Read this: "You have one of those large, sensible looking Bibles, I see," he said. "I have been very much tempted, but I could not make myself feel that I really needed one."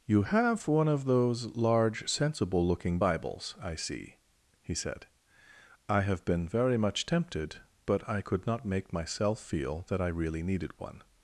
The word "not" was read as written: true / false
true